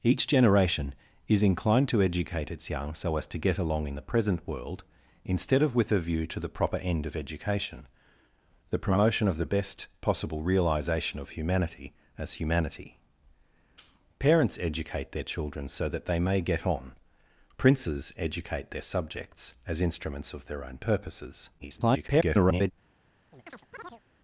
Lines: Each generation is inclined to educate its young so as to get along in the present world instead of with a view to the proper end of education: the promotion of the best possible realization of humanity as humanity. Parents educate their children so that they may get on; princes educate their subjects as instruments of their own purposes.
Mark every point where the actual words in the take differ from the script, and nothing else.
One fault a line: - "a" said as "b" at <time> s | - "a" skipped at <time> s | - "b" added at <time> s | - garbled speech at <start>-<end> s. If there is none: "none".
- garbled speech at 21.6-22.7 s